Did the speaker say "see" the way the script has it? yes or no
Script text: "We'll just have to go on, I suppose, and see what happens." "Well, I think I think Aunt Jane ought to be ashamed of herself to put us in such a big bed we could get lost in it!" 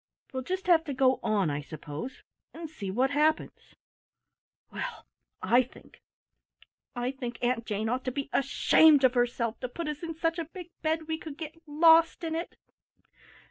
yes